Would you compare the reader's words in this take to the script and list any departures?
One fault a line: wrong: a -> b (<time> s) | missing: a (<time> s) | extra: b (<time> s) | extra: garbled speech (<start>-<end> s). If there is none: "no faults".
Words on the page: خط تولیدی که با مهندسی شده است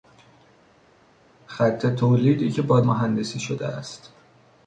no faults